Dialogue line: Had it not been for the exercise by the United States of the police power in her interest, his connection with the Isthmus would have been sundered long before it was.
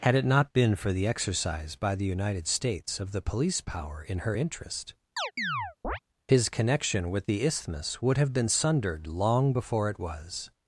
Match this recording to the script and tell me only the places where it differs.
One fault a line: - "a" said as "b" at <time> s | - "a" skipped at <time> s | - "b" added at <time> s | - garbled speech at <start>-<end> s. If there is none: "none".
none